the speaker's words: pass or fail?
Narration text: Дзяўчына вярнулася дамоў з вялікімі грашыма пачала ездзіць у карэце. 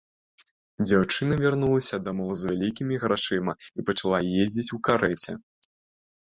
fail